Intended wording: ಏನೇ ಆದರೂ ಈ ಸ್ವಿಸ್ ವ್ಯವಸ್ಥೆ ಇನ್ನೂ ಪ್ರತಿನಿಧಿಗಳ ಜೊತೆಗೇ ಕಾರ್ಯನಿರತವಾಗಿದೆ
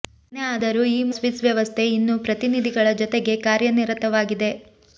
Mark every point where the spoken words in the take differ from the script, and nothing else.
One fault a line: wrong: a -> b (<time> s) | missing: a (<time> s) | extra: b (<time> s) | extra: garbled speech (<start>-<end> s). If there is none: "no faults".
no faults